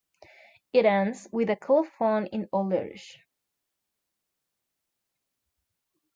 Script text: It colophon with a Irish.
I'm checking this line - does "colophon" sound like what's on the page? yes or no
no